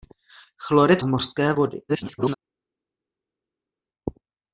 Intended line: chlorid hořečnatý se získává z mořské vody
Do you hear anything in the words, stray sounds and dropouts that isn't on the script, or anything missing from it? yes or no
yes